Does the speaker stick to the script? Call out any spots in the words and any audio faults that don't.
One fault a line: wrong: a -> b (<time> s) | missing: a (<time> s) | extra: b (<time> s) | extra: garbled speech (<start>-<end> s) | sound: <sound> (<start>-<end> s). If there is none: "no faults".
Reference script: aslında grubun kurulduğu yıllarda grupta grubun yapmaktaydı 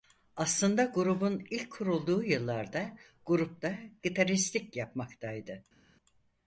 extra: ilk (1.5 s)
wrong: grubun -> gitaristlik (4.0 s)